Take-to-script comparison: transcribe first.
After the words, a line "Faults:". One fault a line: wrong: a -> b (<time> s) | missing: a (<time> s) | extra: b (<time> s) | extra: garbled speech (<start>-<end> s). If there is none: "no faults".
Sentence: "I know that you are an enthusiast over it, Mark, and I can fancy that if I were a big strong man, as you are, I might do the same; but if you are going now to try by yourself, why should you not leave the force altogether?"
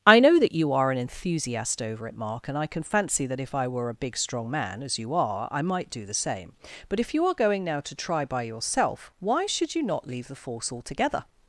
"I know that you are an enthusiast over it, Mark, and I can fancy that if I were a big strong man, as you are, I might do the same; but if you are going now to try by yourself, why should you not leave the force altogether?"
Faults:
no faults